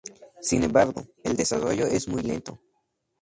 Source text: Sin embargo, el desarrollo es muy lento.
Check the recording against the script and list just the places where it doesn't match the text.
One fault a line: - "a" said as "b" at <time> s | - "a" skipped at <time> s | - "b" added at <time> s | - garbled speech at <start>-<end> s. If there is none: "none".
none